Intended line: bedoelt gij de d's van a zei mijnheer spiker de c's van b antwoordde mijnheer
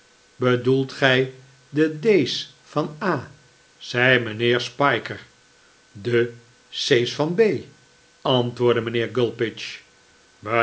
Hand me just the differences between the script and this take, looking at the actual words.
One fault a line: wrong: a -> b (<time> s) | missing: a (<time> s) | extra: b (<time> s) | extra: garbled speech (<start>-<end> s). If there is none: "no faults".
no faults